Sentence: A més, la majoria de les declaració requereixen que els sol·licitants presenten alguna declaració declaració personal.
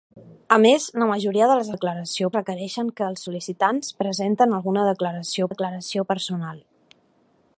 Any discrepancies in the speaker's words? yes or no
no